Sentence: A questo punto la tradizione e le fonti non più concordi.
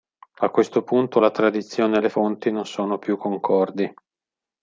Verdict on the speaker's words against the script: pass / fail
fail